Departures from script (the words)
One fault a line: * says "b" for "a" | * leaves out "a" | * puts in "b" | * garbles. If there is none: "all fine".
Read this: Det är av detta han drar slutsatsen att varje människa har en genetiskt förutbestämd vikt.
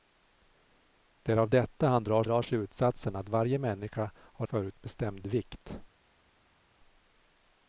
* puts in "drar"
* leaves out "en genetiskt"